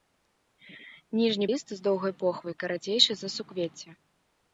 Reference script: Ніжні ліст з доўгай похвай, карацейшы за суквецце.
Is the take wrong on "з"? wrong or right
right